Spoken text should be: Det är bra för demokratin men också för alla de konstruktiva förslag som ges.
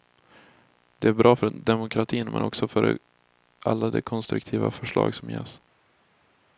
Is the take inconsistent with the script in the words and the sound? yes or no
no